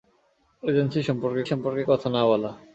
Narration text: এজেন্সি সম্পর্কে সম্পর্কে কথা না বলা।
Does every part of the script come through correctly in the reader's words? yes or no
yes